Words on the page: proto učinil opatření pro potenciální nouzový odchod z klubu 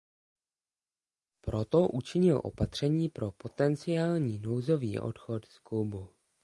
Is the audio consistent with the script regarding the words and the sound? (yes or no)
yes